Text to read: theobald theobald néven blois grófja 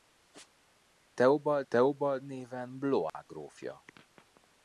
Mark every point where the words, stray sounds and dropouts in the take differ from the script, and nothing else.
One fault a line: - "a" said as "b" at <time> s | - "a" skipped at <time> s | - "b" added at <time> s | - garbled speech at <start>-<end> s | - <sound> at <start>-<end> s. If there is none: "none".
- dropout at 3.1-3.1 s